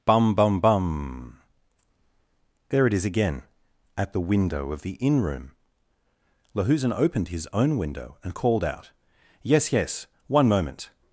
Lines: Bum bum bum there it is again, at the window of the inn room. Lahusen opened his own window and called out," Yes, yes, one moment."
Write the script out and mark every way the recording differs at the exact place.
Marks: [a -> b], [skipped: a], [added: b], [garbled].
Bum bum bum there it is again, at the window of the inn room. Lahusen opened his own window and called out," Yes, yes, one moment."